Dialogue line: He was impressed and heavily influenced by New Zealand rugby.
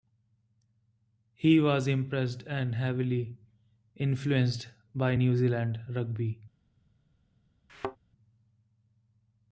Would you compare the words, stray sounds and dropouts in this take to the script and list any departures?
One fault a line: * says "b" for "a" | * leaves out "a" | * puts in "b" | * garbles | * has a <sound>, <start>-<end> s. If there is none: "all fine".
* has a thud, 7.7-8.0 s